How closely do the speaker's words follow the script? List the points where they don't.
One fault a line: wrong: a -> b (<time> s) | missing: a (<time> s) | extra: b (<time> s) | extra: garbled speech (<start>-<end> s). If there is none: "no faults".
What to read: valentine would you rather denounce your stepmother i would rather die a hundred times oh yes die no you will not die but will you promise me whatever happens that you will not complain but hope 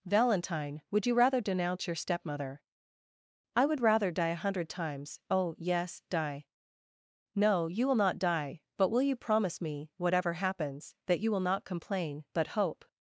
no faults